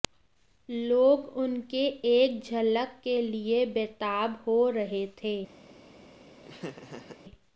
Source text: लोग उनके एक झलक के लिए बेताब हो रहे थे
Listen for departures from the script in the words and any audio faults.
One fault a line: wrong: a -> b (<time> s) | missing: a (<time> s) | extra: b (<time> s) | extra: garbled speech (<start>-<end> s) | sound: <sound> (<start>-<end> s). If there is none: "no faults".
sound: laugh (6.4-7.2 s)